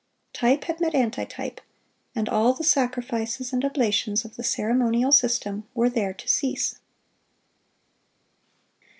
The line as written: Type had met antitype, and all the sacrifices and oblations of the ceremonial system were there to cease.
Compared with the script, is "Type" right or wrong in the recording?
right